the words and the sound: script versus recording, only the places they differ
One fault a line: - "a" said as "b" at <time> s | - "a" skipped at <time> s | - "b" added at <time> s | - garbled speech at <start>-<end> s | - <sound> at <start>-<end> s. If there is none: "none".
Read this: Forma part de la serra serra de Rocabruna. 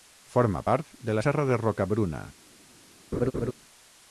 - "serra" skipped at 1.5 s
- laugh at 3.1-3.5 s